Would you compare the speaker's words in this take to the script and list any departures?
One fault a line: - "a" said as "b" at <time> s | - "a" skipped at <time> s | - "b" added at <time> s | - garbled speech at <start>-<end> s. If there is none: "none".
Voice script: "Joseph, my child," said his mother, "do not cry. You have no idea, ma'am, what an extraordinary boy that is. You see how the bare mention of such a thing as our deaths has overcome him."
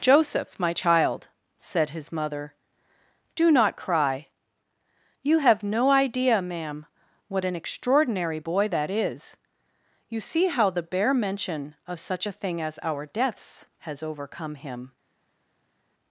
none